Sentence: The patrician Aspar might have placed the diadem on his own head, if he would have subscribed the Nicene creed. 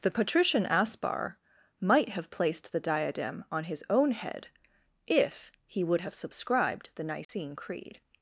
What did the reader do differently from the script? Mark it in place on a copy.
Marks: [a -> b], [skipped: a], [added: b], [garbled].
The patrician Aspar might have placed the diadem on his own head, if he would have subscribed the Nicene creed.